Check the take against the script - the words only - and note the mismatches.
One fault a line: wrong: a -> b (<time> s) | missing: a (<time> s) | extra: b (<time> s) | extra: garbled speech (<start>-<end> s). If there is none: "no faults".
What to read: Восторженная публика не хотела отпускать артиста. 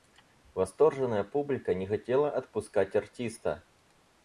no faults